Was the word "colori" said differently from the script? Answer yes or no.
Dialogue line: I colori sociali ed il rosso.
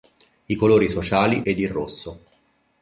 no